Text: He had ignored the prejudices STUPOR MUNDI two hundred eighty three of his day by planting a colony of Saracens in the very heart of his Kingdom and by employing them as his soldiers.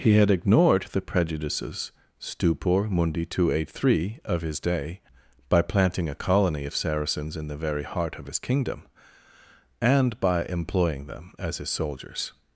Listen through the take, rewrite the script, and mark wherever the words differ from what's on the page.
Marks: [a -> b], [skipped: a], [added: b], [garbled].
He had ignored the prejudices STUPOR MUNDI two hundred eighty three of his day by planting a colony of Saracens in the very heart of his Kingdom and by employing them as his soldiers.